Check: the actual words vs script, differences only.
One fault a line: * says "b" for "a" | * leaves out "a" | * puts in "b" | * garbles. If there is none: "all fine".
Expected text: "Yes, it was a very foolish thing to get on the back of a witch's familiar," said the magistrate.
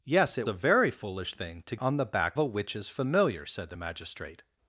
* leaves out "was"
* leaves out "get"
* leaves out "of"